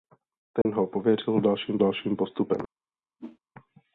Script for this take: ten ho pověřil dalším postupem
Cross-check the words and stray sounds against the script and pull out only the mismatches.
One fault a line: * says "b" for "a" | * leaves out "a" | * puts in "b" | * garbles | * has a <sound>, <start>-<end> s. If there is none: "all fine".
* has a dropout, 0.6-0.7 s
* puts in "dalším"
* has a whoosh, 3.2-3.4 s